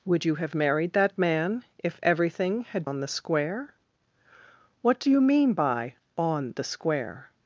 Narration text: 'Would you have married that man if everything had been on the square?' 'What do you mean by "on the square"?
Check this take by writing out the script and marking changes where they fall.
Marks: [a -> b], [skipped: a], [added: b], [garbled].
'Would you have married that man if everything had [skipped: been] on the square?' 'What do you mean by "on the square"?